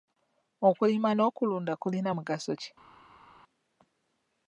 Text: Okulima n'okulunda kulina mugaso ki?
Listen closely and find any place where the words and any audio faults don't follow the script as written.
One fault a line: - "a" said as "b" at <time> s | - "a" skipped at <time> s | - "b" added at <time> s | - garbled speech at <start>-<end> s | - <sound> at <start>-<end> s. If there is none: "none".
none